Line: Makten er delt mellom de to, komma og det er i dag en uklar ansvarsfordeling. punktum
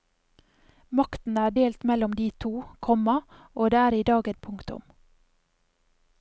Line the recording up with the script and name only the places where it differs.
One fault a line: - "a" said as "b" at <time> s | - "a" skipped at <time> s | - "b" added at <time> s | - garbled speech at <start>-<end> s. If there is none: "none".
- "en uklar ansvarsfordeling" skipped at 4.3 s